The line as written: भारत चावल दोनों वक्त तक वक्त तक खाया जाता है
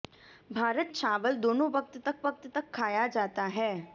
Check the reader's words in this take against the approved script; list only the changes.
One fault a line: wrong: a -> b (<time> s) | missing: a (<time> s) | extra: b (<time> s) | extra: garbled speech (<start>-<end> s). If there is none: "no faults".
no faults